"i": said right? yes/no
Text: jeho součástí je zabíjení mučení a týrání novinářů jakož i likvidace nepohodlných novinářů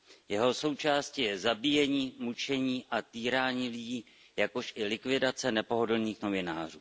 yes